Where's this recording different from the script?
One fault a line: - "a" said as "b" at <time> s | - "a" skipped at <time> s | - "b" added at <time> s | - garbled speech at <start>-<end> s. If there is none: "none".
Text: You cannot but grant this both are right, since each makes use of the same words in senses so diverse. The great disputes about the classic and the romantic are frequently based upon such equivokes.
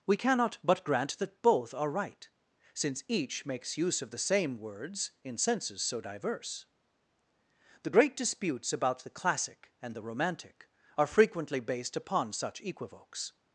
- "You" said as "We" at 0.1 s
- "this" said as "that" at 1.2 s